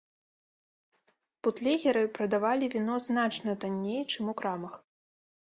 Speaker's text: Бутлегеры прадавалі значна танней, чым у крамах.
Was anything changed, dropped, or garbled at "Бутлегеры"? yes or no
no